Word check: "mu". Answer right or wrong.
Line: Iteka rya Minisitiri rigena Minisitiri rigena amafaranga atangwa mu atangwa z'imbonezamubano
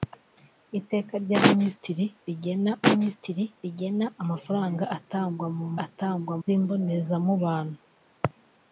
right